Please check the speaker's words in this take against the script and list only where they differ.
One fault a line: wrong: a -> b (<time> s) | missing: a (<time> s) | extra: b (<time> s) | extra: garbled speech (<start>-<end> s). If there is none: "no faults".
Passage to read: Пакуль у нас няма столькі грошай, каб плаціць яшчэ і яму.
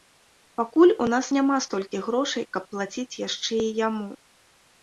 no faults